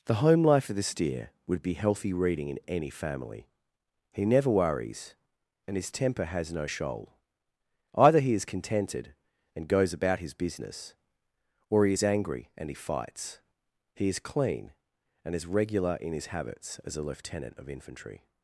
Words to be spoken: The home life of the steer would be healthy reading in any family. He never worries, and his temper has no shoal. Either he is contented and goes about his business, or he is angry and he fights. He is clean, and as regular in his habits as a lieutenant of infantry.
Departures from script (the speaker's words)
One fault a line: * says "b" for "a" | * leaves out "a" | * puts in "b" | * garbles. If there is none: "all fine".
all fine